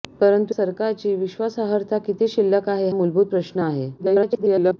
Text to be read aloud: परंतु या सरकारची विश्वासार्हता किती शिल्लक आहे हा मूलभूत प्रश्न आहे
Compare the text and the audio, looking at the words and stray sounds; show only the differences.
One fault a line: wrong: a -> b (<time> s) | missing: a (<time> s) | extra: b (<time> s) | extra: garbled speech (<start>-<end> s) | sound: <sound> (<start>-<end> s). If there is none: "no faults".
missing: या (0.6 s)
missing: हा (2.9 s)
extra: garbled speech (4.0-4.8 s)